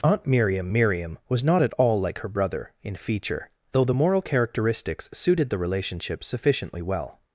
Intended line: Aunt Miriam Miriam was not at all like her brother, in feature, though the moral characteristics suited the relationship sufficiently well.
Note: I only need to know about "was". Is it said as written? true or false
true